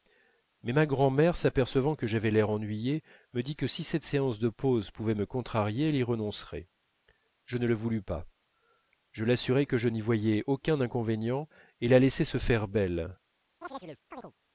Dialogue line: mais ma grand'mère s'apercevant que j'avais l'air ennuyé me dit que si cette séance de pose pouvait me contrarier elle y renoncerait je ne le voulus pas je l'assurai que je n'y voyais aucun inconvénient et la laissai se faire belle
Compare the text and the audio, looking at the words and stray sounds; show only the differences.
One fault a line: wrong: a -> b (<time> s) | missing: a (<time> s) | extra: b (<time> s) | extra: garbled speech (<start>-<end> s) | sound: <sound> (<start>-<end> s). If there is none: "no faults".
sound: chirp (13.6-14.3 s)